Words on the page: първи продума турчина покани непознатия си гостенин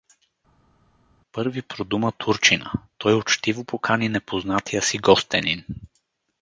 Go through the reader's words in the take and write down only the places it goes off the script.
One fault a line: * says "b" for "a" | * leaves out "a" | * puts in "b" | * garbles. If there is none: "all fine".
* puts in "той учтиво"